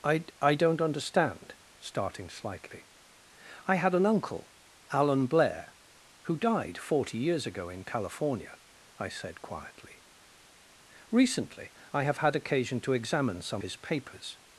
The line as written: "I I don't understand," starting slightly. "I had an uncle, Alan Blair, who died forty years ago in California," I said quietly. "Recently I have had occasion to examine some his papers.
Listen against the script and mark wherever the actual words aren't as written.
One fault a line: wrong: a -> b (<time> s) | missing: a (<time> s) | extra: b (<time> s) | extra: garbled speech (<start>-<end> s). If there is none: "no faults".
no faults